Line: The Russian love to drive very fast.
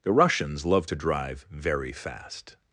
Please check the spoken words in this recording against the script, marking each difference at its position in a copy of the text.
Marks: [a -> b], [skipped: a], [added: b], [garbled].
The [Russian -> Russians] love to drive very fast.